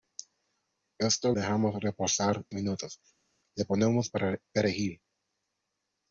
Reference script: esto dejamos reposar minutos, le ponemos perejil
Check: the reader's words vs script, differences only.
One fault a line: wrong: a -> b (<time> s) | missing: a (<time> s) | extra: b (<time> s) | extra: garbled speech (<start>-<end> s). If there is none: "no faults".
no faults